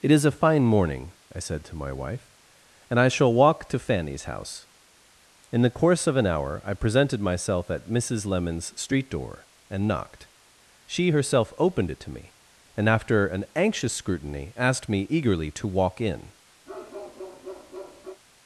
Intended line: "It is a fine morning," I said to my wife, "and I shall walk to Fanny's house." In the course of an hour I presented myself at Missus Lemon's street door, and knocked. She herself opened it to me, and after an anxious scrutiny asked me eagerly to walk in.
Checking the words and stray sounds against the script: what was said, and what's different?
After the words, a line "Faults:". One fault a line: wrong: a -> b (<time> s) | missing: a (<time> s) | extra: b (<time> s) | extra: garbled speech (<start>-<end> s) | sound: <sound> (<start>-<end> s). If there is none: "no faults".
"It is a fine morning," I said to my wife, "and I shall walk to Fanny's house." In the course of an hour I presented myself at Missus Lemon's street door, and knocked. She herself opened it to me, and after an anxious scrutiny asked me eagerly to walk in.
Faults:
sound: bark (16.7-18.2 s)